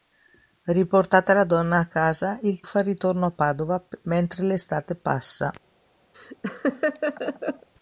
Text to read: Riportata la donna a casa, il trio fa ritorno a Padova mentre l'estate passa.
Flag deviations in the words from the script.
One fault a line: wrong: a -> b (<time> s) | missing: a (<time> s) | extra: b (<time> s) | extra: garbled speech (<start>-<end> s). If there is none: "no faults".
missing: trio (2.6 s)